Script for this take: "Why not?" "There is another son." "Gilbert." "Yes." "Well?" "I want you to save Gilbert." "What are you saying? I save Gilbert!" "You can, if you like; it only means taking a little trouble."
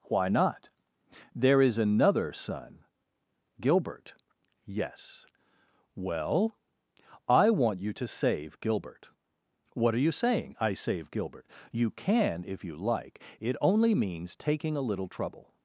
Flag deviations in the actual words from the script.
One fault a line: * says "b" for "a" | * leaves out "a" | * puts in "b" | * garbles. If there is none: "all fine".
all fine